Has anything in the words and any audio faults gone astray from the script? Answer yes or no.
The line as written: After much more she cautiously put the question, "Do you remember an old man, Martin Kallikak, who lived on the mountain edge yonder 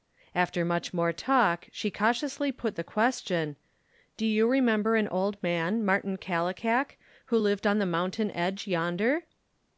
yes